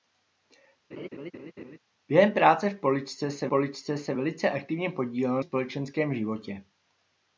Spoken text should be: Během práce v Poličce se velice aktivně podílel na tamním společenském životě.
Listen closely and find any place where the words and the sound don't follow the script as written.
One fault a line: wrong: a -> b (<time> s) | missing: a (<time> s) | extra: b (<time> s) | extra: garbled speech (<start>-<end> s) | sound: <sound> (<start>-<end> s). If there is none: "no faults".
sound: laugh (0.9-1.8 s)
extra: Poličce se (3.5 s)
missing: na tamním (5.4 s)